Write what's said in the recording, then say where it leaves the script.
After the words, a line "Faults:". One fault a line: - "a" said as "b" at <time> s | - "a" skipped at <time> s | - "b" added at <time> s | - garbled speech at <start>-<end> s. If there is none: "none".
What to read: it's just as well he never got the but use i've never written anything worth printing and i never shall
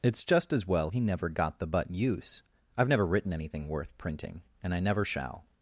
it's just as well he never got the but use i've never written anything worth printing and i never shall
Faults:
none